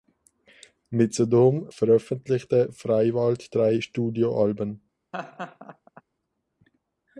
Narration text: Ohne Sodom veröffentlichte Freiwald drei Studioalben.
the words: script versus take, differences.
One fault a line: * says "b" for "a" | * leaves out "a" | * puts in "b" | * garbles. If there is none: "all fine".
* says "Mit" for "Ohne"